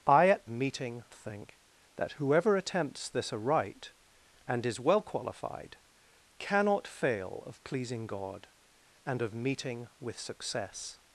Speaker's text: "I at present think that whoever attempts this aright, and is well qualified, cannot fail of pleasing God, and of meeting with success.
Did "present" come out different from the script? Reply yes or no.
yes